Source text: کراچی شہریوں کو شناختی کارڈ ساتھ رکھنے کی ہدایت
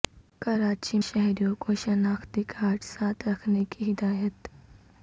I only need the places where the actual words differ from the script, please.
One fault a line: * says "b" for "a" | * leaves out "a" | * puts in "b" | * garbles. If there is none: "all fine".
all fine